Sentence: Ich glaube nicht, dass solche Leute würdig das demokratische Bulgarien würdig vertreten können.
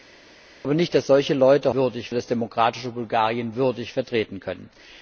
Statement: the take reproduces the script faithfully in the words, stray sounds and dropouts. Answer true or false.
true